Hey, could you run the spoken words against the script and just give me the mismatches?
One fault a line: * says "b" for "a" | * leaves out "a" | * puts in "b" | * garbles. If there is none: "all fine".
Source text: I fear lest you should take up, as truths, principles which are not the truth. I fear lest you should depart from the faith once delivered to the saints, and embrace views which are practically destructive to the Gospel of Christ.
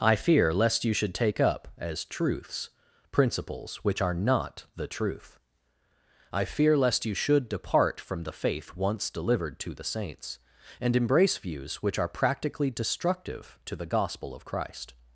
all fine